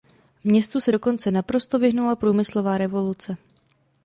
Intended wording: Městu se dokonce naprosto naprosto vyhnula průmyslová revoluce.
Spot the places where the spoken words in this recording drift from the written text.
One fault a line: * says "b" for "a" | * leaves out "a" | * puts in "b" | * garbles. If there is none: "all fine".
* leaves out "naprosto"